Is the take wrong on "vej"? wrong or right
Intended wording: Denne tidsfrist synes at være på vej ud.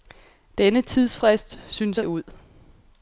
wrong